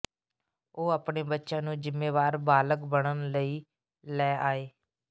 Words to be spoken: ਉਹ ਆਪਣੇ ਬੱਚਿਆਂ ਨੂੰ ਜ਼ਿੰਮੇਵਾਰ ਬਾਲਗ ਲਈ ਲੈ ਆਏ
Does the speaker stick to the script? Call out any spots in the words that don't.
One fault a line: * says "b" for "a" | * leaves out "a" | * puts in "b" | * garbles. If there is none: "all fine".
* puts in "ਬਣਨ"